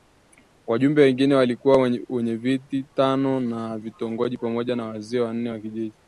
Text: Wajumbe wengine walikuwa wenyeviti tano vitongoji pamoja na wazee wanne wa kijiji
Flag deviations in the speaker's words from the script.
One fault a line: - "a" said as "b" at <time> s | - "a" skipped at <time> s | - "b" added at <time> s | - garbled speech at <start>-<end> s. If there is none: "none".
- "wa" added at 3.5 s